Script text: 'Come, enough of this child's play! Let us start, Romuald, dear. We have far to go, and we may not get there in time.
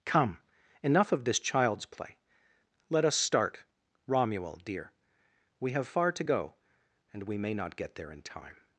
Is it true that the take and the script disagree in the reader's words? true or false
false